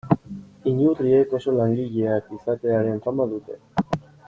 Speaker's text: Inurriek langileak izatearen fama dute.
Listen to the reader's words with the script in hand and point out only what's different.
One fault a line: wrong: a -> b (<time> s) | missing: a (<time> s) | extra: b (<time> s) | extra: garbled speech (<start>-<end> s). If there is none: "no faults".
extra: oso (1.4 s)